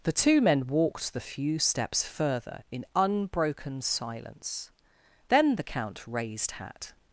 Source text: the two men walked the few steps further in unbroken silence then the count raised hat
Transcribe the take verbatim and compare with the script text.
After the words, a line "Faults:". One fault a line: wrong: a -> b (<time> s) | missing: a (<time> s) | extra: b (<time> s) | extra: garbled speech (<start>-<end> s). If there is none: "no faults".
the two men walked the few steps further in unbroken silence then the count raised hat
Faults:
no faults